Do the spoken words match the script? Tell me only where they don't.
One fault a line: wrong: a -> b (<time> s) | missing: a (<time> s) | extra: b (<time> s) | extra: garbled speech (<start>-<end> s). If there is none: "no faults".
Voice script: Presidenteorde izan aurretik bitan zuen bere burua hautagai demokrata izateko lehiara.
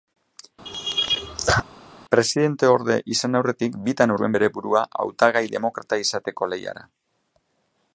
no faults